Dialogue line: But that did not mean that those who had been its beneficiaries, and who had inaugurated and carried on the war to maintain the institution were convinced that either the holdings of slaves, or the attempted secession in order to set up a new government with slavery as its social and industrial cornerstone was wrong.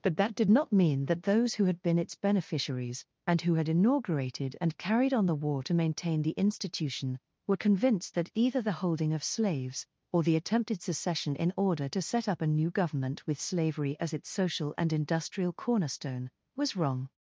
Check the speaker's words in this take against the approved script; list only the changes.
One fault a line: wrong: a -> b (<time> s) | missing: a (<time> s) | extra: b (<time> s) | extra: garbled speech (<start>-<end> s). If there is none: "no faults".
wrong: holdings -> holding (8.8 s)